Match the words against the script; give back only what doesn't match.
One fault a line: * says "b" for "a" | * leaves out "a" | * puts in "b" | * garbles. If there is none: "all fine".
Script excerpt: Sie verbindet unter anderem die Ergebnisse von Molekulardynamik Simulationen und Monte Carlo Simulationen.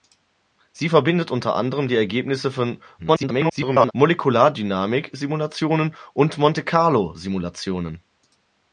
* garbles